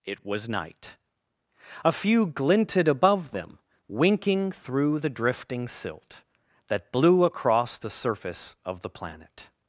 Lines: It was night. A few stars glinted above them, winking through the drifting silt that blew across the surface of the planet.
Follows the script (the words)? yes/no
no